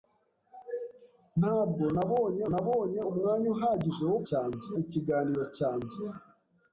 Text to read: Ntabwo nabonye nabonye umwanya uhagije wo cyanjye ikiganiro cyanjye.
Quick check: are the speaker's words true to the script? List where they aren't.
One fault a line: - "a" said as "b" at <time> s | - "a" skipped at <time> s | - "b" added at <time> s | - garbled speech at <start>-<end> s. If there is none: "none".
none